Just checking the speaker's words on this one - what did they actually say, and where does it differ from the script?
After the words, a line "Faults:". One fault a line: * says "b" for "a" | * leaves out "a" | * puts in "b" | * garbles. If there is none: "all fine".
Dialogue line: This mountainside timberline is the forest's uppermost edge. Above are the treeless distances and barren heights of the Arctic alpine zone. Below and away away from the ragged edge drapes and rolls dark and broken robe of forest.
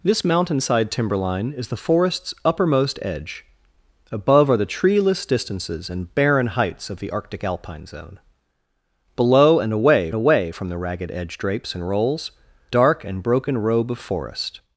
This mountainside timberline is the forest's uppermost edge. Above are the treeless distances and barren heights of the Arctic alpine zone. Below and away away from the ragged edge drapes and rolls dark and broken robe of forest.
Faults:
all fine